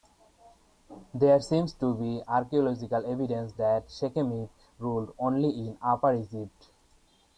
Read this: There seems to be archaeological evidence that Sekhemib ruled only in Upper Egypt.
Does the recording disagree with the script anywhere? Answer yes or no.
no